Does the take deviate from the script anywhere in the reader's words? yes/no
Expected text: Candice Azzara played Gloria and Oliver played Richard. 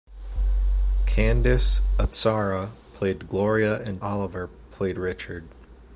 no